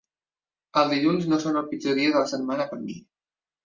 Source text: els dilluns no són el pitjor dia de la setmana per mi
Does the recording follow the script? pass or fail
pass